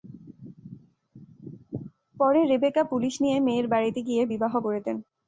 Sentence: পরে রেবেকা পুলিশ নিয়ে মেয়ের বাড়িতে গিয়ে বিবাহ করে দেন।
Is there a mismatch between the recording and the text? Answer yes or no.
no